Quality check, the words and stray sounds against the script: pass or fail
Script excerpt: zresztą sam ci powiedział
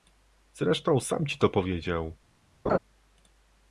fail